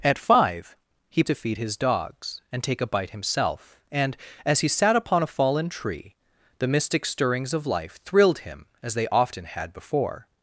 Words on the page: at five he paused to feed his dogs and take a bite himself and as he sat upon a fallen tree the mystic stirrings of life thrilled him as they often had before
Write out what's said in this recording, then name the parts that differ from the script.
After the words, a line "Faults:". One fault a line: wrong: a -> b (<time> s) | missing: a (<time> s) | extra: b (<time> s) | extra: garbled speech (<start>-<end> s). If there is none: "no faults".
at five he to feed his dogs and take a bite himself and as he sat upon a fallen tree the mystic stirrings of life thrilled him as they often had before
Faults:
missing: paused (1.2 s)